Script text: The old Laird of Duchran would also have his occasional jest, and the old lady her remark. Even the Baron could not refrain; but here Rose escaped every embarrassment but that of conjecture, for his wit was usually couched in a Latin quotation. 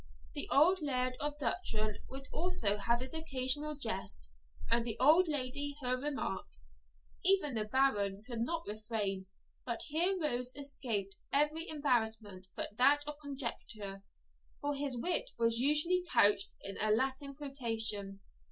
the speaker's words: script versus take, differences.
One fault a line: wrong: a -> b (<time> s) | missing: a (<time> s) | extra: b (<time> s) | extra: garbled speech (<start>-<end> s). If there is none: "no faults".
no faults